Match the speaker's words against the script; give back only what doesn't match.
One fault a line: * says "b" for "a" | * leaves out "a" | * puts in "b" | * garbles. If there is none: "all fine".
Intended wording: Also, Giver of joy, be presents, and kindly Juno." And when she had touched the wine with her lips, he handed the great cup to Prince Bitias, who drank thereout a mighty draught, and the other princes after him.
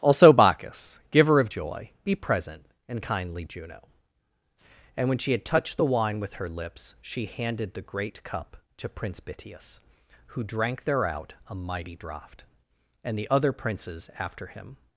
* puts in "Bacchus"
* says "present" for "presents"
* says "she" for "he"